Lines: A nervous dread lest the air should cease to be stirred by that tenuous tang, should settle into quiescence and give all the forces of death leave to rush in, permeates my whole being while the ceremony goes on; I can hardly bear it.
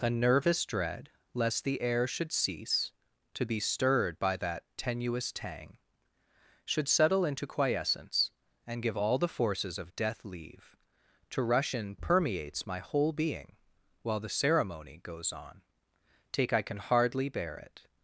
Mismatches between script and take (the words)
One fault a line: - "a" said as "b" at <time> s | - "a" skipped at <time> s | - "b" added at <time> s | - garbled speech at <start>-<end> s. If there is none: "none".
- "take" added at 16.3 s